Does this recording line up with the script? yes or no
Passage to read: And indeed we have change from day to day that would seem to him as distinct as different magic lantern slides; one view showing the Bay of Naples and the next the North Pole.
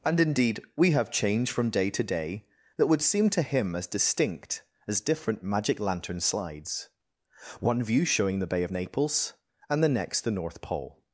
yes